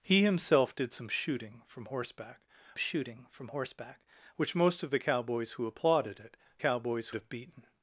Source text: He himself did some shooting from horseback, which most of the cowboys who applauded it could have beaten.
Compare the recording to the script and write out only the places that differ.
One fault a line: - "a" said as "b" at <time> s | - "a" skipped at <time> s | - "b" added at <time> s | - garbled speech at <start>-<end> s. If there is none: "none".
- "shooting from horseback" added at 2.8 s
- "could" said as "cowboys" at 6.6 s